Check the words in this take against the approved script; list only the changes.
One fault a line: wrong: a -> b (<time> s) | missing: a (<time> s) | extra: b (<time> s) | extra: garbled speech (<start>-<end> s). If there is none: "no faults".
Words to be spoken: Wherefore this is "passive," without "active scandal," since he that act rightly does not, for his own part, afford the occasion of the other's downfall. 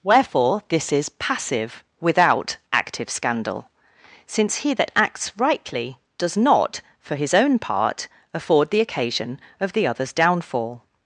wrong: act -> acts (5.0 s)